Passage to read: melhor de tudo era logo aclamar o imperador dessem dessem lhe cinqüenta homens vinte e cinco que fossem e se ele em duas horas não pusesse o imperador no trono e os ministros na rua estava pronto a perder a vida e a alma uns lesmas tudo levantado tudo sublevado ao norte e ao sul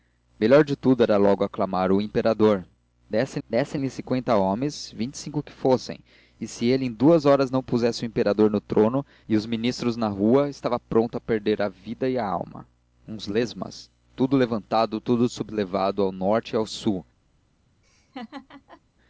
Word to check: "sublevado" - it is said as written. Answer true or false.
true